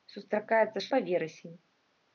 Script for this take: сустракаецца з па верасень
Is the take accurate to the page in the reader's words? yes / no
yes